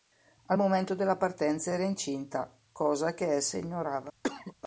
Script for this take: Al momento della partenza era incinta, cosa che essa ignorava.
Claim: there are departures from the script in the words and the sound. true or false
true